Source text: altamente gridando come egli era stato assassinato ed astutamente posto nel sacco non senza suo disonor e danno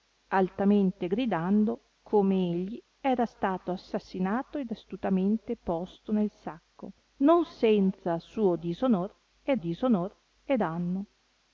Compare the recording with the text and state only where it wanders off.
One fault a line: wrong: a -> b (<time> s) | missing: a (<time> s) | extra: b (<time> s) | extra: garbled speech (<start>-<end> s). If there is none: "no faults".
extra: disonor e (9.6 s)